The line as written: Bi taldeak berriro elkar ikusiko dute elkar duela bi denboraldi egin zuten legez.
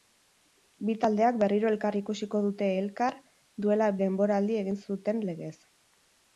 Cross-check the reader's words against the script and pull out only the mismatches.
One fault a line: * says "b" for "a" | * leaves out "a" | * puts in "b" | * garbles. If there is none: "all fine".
* leaves out "bi"